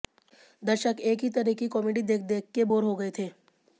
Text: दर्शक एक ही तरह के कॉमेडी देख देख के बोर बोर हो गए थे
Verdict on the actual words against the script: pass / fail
fail